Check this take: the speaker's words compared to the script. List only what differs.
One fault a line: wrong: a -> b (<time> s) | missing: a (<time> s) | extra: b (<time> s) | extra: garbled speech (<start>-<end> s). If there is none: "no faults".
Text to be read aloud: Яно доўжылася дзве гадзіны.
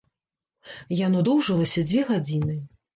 no faults